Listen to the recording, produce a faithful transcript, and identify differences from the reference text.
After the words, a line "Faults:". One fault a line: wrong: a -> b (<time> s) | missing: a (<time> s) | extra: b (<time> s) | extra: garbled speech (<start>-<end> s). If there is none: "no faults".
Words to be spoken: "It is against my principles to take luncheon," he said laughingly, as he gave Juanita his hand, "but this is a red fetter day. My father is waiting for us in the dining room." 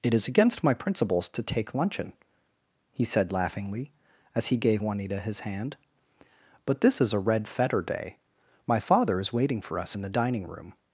"It is against my principles to take luncheon," he said laughingly, as he gave Juanita his hand, "but this is a red fetter day. My father is waiting for us in the dining room."
Faults:
no faults